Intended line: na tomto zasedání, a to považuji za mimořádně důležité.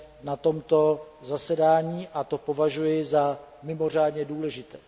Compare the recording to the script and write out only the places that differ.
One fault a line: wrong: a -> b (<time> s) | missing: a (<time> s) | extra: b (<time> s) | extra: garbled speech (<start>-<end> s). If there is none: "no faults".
no faults